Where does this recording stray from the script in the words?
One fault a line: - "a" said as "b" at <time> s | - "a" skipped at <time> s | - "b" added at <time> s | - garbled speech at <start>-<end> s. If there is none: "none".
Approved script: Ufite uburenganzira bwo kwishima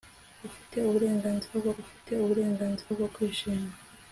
- "ufite uburenganzira bwo" added at 1.8 s